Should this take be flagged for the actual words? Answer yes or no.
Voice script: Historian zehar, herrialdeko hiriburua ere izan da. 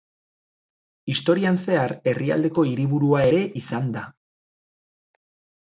no